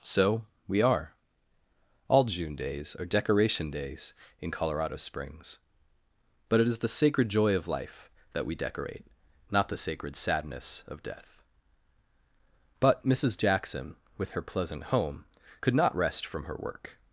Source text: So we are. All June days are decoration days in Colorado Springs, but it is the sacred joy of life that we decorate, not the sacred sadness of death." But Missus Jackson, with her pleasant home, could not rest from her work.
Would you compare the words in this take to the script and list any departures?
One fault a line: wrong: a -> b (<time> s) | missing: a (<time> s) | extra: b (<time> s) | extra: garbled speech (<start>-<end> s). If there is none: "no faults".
no faults